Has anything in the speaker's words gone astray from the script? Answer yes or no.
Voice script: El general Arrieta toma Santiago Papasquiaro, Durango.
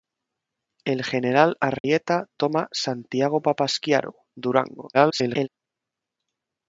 yes